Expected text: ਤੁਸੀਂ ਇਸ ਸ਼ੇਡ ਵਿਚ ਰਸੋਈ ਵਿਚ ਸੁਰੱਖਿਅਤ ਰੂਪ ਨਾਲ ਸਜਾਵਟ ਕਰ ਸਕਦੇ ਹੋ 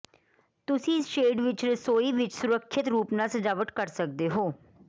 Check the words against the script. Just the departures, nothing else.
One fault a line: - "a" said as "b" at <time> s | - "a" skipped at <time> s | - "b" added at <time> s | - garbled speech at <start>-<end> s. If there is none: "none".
none